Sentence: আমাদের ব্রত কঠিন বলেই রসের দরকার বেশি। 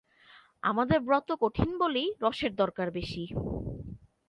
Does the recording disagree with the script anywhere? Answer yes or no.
no